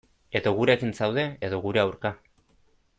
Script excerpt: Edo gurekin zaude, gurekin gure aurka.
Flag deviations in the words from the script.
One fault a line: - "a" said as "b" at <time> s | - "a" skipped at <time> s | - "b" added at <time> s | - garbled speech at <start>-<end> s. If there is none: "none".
- "gurekin" said as "edo" at 1.5 s